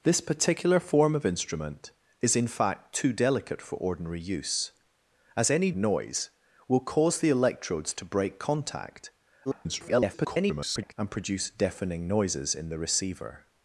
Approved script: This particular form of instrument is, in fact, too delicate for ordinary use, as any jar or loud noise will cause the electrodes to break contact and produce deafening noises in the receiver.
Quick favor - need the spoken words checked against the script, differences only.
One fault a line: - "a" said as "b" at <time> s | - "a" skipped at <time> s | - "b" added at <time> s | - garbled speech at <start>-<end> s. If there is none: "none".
- "jar or loud" skipped at 5.7 s
- garbled speech at 9.5-11.0 s